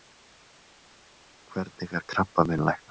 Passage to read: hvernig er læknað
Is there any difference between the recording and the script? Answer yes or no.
yes